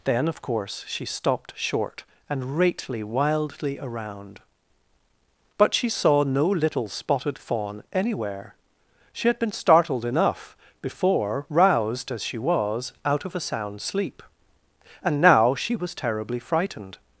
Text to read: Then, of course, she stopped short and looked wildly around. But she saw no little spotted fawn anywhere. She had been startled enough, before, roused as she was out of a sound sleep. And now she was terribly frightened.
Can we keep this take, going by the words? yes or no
no